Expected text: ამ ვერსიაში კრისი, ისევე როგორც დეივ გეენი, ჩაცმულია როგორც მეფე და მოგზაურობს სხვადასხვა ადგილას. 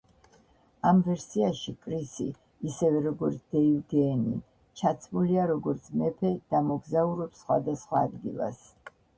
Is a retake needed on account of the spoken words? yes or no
no